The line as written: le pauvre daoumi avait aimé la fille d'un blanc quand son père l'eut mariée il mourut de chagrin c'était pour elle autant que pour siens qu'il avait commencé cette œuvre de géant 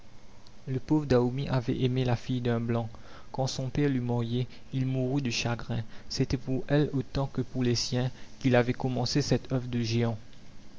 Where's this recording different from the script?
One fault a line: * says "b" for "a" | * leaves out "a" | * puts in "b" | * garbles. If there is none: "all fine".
* puts in "les"